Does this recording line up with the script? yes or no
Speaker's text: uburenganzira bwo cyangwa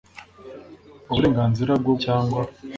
yes